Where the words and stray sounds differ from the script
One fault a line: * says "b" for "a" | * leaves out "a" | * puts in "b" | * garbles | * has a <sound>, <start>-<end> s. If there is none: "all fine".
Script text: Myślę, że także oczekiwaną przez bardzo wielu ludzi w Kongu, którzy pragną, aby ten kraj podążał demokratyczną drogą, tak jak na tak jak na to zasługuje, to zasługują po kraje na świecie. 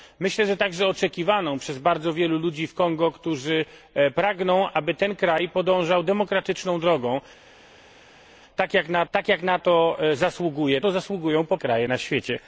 all fine